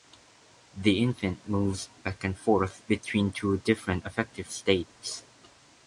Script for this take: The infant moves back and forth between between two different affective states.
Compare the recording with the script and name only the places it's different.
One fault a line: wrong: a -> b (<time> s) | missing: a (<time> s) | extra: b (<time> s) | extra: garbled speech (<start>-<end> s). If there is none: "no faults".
missing: between (3.3 s)